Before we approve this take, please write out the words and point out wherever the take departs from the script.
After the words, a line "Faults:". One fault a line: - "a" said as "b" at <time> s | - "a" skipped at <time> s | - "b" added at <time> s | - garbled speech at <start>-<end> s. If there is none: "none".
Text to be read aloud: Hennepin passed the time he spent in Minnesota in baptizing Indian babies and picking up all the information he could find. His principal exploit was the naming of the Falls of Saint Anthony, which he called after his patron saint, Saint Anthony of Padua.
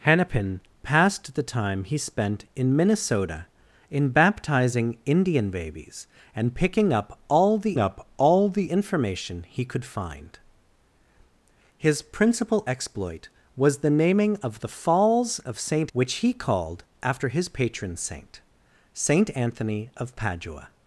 Hennepin passed the time he spent in Minnesota in baptizing Indian babies and picking up all the up all the information he could find. His principal exploit was the naming of the Falls of Saint Which he called after his patron saint, Saint Anthony of Padua.
Faults:
- "up all the" added at 7.8 s
- "Anthony" skipped at 15.9 s